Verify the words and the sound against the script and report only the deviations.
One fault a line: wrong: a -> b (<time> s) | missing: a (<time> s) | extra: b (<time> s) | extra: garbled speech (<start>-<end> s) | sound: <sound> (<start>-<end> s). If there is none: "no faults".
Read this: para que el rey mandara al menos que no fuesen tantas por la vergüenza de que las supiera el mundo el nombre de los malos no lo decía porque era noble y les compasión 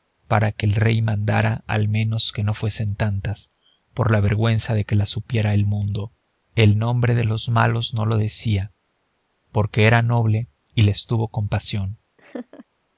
extra: tuvo (11.1 s)
sound: laugh (12.2-12.7 s)